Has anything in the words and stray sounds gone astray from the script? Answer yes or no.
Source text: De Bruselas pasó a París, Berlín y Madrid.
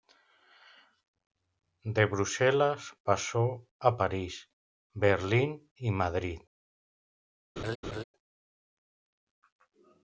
yes